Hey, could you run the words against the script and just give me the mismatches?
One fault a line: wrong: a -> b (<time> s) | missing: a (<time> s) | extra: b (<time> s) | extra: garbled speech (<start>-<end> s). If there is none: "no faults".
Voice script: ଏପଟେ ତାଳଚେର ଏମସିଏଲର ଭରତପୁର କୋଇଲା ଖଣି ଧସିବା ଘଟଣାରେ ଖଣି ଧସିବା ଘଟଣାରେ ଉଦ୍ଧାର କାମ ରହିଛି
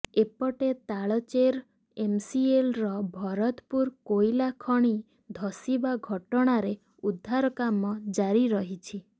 missing: ଖଣି ଧସିବା ଘଟଣାରେ (6.8 s)
extra: ଜାରି (8.1 s)